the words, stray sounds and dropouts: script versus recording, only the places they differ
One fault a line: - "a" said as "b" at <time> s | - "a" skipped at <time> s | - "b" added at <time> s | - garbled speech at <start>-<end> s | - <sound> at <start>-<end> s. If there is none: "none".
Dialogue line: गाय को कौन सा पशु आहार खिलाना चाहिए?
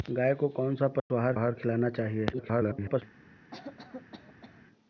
- dropout at 1.0-1.1 s
- "आहार" added at 1.3 s
- garbled speech at 2.3-3.0 s
- cough at 3.5-4.6 s